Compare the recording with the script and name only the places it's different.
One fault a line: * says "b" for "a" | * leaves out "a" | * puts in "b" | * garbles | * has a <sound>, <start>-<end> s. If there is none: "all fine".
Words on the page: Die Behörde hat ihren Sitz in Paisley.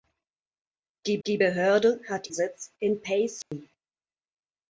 * puts in "die"
* leaves out "ihren"
* has a dropout, 3.4-3.5 s